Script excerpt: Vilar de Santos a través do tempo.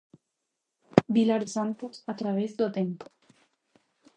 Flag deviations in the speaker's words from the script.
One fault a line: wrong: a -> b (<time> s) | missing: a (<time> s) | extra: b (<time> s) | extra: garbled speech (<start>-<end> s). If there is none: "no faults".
missing: de (1.4 s)